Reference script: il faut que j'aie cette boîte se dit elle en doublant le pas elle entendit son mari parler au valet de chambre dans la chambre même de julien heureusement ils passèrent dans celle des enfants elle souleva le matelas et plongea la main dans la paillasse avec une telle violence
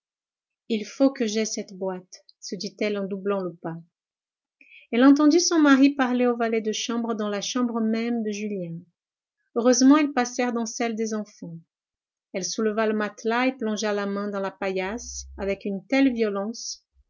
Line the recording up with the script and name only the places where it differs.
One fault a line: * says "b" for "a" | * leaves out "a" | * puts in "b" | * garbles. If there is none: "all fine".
all fine